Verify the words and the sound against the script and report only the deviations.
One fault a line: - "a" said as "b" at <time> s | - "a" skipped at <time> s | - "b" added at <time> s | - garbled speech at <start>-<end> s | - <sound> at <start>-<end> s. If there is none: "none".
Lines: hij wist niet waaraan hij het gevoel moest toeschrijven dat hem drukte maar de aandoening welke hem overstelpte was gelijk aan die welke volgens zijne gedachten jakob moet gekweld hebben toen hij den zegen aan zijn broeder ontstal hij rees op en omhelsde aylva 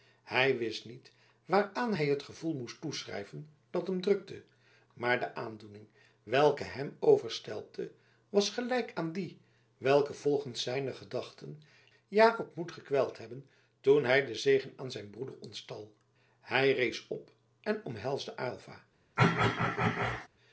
- throat clearing at 19.2-20.3 s